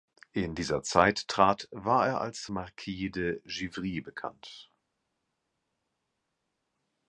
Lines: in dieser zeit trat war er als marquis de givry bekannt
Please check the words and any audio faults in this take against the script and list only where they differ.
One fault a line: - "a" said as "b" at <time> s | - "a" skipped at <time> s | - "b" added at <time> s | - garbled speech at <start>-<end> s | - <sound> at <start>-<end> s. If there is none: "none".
none